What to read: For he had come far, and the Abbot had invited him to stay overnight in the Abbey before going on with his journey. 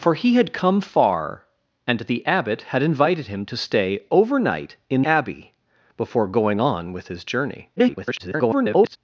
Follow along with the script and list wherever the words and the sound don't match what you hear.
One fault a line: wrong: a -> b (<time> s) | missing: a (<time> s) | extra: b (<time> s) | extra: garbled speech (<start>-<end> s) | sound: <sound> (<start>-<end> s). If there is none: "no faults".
missing: the (5.0 s)
extra: garbled speech (7.8-9.0 s)